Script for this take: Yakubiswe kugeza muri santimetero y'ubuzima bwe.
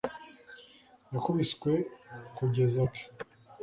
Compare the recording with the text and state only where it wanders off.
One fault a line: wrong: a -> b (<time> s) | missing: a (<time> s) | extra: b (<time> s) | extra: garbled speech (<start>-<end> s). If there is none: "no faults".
missing: muri santimetero y'ubuzima (2.8 s)